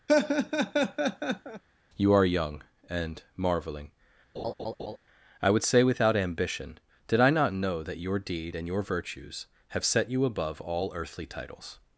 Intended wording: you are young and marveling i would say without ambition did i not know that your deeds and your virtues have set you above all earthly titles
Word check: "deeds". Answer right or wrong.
wrong